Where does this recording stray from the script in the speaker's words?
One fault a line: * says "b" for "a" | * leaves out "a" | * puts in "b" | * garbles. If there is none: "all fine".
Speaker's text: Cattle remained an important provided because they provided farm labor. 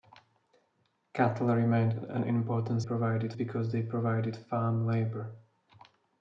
all fine